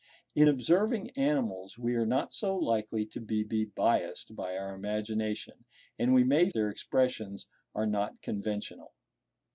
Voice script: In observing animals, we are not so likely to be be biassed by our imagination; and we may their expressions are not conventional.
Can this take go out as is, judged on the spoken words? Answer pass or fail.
pass